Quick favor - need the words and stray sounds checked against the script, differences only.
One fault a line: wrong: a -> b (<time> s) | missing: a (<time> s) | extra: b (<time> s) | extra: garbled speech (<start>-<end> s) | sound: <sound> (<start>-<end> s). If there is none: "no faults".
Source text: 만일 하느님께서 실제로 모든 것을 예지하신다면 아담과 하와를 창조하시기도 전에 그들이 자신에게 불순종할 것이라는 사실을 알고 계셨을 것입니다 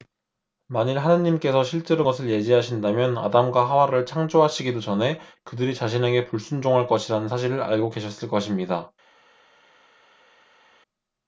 missing: 모든 (2.0 s)